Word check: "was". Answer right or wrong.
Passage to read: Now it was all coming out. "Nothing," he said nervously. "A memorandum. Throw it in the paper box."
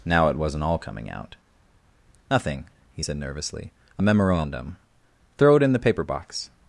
wrong